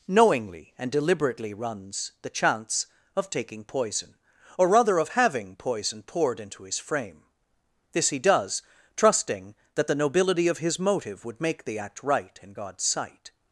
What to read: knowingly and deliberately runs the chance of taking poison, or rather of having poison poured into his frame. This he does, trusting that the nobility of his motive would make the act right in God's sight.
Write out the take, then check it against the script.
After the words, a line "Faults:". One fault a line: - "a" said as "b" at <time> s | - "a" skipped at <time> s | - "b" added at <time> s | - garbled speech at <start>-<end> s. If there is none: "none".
knowingly and deliberately runs the chance of taking poison, or rather of having poison poured into his frame. This he does, trusting that the nobility of his motive would make the act right in God's sight.
Faults:
none